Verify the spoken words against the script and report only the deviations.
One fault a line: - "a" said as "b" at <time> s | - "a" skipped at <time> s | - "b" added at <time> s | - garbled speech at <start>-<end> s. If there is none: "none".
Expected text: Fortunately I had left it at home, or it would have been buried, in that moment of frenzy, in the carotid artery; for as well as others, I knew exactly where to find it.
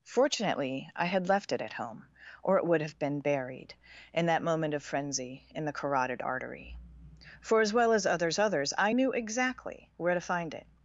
- "others" added at 8.4 s